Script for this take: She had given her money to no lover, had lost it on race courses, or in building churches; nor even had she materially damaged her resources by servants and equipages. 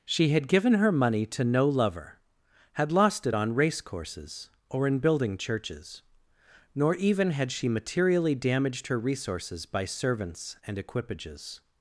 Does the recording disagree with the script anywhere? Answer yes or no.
no